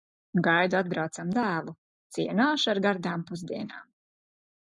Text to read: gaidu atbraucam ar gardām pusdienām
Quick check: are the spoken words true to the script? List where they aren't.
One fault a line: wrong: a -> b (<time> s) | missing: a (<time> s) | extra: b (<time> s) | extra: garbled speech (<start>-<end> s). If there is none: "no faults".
extra: dēlu cienāšu (1.4 s)